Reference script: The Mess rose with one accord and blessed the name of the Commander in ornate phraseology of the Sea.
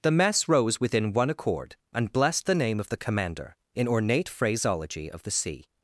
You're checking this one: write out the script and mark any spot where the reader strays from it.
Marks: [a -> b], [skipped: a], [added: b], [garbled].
The Mess rose [with -> within] one accord and blessed the name of the Commander in ornate phraseology of the Sea.